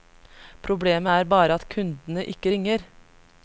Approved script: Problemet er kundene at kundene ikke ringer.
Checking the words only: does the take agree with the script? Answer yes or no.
no